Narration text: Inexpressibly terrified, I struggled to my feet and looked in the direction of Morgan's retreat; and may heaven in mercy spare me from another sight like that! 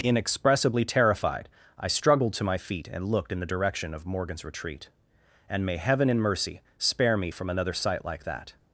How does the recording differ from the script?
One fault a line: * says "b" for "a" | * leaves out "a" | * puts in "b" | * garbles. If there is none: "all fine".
all fine